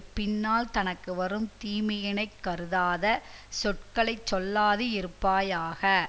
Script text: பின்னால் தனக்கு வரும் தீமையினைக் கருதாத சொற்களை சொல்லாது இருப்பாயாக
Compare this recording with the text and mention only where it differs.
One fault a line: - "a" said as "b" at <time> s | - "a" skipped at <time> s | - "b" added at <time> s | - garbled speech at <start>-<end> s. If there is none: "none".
none